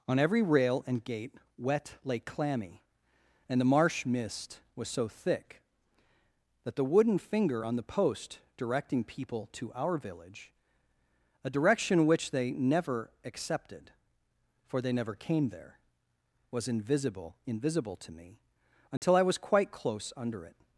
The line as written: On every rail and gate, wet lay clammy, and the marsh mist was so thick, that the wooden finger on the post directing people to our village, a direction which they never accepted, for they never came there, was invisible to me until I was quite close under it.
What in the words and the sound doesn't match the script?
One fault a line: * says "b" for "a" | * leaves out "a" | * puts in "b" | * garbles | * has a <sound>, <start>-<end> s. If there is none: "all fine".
* puts in "invisible"
* has a dropout, 19.0-19.0 s